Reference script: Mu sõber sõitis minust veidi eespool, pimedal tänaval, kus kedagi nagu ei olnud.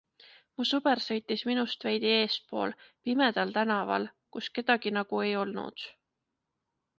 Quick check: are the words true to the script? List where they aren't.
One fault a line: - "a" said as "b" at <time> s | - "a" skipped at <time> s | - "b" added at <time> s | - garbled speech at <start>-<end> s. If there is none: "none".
none